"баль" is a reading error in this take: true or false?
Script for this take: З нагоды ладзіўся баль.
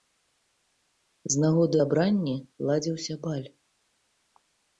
false